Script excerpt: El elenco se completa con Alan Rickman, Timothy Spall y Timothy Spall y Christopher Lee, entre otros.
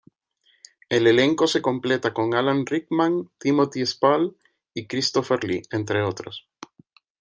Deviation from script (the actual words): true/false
true